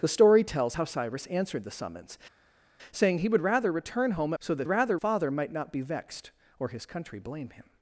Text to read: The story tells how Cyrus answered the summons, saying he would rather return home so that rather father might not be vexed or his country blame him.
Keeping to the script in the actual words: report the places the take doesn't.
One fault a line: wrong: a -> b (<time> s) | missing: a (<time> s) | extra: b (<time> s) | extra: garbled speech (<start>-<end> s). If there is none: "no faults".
no faults